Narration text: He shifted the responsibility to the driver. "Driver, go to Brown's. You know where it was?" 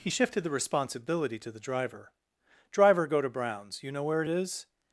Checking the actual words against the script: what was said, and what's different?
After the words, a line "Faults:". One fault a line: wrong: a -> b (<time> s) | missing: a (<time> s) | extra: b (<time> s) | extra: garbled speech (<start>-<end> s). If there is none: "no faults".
He shifted the responsibility to the driver. "Driver, go to Brown's. You know where it is?"
Faults:
wrong: was -> is (4.3 s)